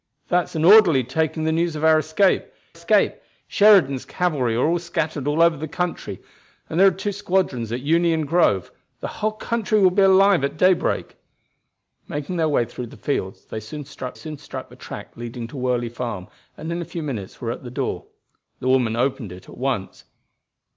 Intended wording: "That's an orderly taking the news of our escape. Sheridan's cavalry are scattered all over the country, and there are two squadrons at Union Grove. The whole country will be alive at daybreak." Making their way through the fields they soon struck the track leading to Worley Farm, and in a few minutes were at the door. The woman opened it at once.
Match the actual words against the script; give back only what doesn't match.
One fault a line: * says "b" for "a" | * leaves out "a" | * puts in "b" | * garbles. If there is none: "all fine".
* puts in "escape"
* puts in "soon struck"